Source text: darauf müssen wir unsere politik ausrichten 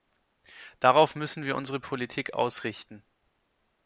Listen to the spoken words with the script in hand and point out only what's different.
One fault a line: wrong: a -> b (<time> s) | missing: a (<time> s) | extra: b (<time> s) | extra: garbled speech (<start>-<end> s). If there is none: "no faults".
no faults